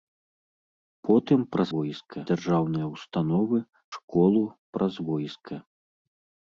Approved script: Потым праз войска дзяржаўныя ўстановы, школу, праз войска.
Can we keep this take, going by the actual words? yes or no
yes